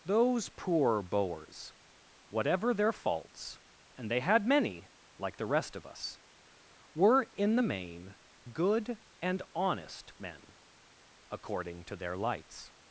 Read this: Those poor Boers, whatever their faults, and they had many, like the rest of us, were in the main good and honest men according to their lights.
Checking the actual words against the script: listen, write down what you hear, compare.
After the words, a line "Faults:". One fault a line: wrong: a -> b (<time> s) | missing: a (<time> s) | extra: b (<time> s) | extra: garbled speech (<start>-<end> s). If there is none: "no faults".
Those poor Boers, whatever their faults, and they had many, like the rest of us, were in the main good and honest men according to their lights.
Faults:
no faults